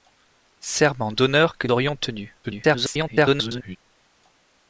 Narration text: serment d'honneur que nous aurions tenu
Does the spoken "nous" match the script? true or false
false